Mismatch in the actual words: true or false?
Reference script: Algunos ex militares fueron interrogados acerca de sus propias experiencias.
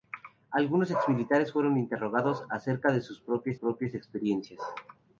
true